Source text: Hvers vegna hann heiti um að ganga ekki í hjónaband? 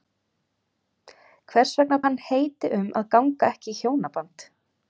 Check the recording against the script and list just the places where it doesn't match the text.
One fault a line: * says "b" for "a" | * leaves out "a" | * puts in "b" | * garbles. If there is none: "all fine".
all fine